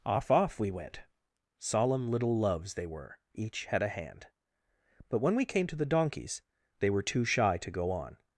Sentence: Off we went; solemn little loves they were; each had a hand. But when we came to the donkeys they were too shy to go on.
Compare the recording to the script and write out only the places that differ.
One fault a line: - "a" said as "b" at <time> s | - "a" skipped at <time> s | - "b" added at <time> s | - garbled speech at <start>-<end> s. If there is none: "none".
- "off" added at 0.3 s